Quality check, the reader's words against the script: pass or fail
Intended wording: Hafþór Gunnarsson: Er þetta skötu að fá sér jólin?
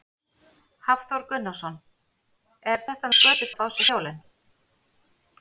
pass